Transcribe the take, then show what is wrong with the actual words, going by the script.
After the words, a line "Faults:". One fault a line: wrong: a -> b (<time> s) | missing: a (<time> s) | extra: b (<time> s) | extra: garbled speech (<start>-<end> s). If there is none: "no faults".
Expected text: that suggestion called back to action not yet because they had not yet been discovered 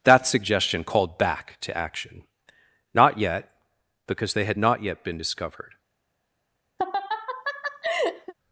that suggestion called back to action not yet because they had not yet been discovered
Faults:
no faults